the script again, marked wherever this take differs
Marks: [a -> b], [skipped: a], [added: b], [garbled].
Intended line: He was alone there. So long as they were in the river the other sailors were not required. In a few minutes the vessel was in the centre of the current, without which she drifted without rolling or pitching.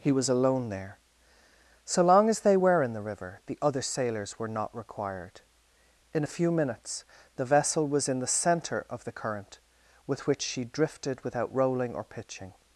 He was alone there. So long as they were in the river the other sailors were not required. In a few minutes the vessel was in the centre of the current, [without -> with] which she drifted without rolling or pitching.